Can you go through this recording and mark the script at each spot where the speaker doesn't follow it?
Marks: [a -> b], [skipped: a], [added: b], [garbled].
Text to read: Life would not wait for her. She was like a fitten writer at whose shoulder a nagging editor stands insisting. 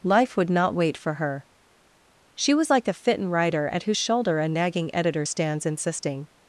Life would not wait for her. She was like a fitten writer at whose shoulder a nagging editor stands insisting.